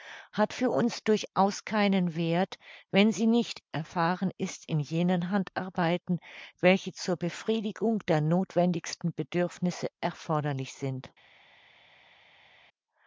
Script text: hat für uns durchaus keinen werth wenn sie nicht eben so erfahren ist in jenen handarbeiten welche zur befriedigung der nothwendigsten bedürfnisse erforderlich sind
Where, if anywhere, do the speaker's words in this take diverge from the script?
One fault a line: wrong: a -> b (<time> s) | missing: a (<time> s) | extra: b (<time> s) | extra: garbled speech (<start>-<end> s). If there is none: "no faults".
missing: eben so (3.6 s)